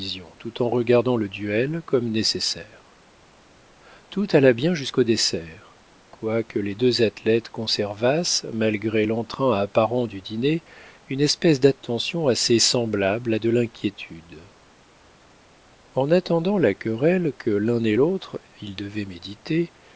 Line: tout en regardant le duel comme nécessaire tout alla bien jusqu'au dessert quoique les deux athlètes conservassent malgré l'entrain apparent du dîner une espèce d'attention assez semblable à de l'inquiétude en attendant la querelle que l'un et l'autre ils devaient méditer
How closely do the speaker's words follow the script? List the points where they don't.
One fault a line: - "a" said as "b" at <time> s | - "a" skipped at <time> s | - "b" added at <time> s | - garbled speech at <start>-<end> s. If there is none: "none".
none